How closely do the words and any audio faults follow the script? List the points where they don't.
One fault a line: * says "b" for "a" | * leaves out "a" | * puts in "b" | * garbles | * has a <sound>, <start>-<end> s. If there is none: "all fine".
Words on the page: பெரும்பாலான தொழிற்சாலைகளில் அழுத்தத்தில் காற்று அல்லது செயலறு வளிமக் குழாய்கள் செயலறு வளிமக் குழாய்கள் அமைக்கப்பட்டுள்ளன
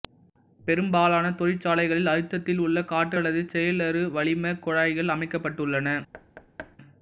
* puts in "உள்ள"
* leaves out "செயலறு வளிமக் குழாய்கள்"
* has a thud, 6.1-6.8 s